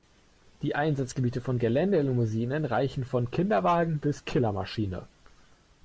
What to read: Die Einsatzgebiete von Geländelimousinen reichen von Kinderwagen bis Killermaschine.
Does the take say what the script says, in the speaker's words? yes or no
yes